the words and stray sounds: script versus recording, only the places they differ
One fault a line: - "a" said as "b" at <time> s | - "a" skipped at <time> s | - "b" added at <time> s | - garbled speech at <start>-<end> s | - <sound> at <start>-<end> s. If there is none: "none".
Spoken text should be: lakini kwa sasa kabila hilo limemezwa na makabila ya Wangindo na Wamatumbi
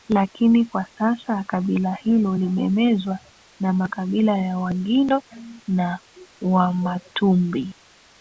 none